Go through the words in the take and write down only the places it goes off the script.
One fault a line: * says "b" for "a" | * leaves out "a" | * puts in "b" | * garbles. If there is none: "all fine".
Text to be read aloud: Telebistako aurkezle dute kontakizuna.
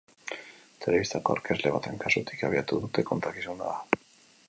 * puts in "baten kasutik abiatu"